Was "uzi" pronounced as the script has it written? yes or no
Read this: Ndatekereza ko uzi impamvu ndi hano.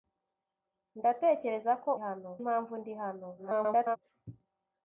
no